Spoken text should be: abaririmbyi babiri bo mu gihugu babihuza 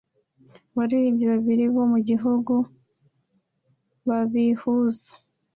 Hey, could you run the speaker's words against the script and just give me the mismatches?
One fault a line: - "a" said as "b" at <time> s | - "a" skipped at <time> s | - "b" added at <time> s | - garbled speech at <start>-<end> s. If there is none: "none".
none